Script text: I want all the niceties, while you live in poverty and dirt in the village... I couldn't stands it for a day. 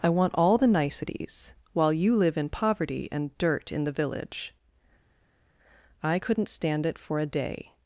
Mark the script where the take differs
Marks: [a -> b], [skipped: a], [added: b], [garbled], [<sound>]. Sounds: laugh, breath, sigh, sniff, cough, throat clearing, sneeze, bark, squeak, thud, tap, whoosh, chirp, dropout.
I want all the niceties, while you live in poverty and dirt in the village... I couldn't [stands -> stand] it for a day.